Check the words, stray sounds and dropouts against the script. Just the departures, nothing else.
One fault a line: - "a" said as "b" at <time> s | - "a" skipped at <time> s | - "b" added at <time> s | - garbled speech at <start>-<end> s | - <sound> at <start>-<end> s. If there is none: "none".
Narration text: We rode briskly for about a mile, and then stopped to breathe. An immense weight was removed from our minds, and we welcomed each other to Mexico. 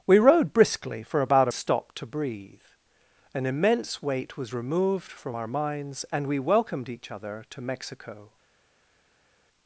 - "mile and then" skipped at 1.5 s